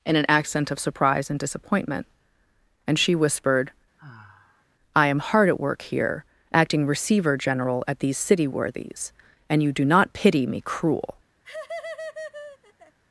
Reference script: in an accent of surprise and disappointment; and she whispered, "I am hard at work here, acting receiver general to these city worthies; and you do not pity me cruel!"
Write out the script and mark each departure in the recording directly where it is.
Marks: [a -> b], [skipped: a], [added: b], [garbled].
in an accent of surprise and disappointment; and she whispered, "I am hard at work here, acting receiver general [to -> at] these city worthies; and you do not pity me cruel!"